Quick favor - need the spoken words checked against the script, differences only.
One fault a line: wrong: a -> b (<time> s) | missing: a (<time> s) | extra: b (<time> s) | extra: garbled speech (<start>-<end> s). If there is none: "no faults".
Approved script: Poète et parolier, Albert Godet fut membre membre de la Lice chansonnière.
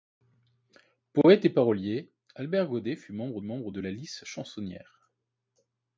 no faults